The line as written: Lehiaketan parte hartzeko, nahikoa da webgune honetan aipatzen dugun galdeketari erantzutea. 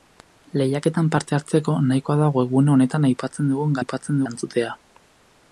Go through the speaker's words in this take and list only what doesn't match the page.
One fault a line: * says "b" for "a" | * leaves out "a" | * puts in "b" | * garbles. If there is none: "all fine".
* says "aipatzen" for "galdeketari"